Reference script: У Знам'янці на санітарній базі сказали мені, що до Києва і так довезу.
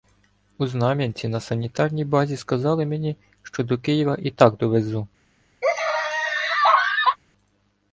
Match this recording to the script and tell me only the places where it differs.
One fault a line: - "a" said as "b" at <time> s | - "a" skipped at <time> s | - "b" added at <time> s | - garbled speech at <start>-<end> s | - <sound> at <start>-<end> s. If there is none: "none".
- laugh at 5.6-7.2 s